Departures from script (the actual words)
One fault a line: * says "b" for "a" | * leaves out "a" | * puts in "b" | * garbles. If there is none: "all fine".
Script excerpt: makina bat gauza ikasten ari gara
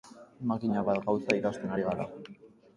all fine